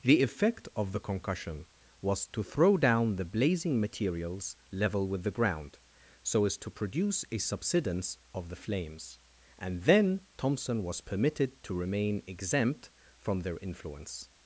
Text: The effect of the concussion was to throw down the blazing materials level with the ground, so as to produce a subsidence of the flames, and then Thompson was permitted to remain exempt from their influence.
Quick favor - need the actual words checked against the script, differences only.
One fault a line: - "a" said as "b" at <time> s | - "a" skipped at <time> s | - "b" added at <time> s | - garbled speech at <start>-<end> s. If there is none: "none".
none